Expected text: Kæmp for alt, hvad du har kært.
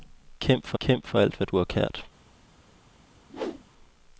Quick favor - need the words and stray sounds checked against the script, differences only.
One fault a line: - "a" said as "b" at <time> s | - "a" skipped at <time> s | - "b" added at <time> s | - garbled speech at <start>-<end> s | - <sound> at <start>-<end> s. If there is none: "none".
- "kæmp for" added at 0.8 s
- whoosh at 3.3-3.6 s